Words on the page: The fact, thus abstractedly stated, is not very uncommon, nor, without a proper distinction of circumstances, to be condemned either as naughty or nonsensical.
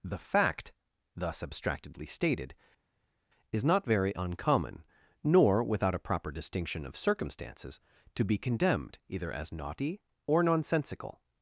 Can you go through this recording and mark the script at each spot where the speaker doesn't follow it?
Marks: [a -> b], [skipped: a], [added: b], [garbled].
The fact, thus abstractedly stated, is not very uncommon, nor, without a proper distinction of circumstances, to be condemned either as naughty or nonsensical.